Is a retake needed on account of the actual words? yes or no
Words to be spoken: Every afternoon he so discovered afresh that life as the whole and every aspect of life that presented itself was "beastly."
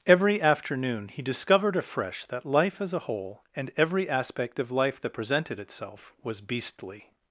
yes